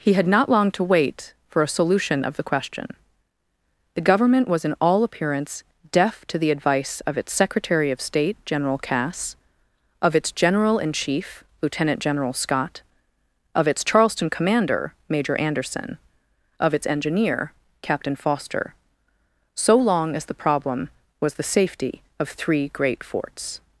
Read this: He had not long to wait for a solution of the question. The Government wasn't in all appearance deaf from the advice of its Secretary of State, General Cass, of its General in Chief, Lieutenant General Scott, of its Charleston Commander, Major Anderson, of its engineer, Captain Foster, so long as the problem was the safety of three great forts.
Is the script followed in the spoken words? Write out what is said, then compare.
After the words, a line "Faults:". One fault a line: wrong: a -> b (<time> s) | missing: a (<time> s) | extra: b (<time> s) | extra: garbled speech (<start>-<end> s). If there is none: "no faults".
He had not long to wait for a solution of the question. The Government was in all appearance deaf to the advice of its Secretary of State, General Cass, of its General in Chief, Lieutenant General Scott, of its Charleston Commander, Major Anderson, of its engineer, Captain Foster, so long as the problem was the safety of three great forts.
Faults:
wrong: wasn't -> was (4.5 s)
wrong: from -> to (6.2 s)